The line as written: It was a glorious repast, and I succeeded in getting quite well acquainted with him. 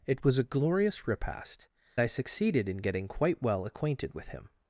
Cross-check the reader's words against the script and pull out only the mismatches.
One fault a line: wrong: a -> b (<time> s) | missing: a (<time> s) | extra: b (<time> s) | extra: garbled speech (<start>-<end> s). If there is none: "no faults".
missing: and (1.7 s)